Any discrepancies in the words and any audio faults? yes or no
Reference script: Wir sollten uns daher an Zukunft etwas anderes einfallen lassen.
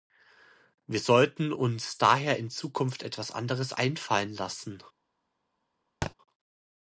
yes